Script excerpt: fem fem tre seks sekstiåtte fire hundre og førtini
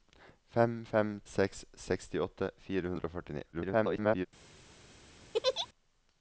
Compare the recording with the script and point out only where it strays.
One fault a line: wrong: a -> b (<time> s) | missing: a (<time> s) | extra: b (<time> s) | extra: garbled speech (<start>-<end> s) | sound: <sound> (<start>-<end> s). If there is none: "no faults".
missing: tre (1.1 s)
extra: garbled speech (3.5-4.3 s)
sound: laugh (5.3-5.7 s)